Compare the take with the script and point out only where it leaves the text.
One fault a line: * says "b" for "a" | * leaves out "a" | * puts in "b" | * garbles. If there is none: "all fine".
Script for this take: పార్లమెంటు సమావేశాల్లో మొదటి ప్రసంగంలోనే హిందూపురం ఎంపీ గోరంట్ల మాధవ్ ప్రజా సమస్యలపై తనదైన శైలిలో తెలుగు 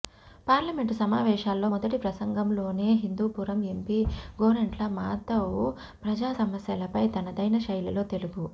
all fine